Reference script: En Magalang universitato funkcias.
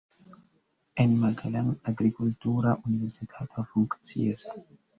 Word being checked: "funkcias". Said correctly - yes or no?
yes